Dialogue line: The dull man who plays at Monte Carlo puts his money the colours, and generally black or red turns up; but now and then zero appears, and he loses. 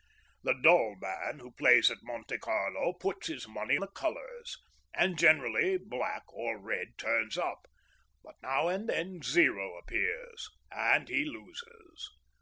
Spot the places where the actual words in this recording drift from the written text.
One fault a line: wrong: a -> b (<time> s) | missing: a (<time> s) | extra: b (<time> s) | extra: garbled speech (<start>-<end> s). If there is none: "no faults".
no faults